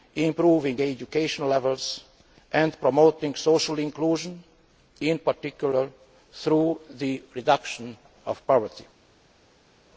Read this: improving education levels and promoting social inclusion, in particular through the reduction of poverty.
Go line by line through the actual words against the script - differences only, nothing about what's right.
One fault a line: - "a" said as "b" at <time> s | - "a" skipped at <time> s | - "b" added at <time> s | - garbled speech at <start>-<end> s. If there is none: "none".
none